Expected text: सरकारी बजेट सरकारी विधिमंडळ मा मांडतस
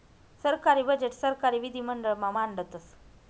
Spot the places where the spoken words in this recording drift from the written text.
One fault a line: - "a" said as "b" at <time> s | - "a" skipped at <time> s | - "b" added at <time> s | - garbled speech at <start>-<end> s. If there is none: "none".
none